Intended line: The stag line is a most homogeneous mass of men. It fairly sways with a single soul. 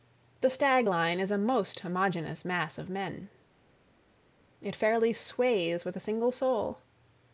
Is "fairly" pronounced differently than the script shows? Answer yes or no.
no